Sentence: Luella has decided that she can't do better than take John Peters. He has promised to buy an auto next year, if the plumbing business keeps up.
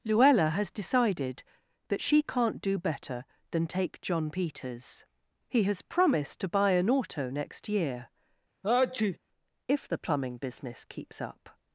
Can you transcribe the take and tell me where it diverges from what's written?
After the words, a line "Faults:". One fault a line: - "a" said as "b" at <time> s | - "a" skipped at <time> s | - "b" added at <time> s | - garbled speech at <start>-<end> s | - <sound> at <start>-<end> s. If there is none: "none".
Luella has decided that she can't do better than take John Peters. He has promised to buy an auto next year, if the plumbing business keeps up.
Faults:
- sneeze at 8.6-9.2 s